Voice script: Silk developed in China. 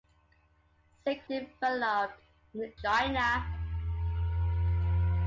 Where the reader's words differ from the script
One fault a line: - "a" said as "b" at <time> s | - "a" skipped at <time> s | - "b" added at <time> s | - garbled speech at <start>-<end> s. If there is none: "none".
none